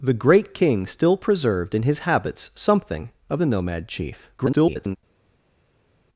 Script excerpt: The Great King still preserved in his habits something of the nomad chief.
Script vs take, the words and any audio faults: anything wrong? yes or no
yes